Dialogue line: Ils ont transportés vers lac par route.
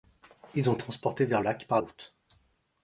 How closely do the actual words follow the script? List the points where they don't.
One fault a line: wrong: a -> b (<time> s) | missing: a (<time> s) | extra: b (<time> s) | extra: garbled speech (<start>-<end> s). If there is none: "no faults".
no faults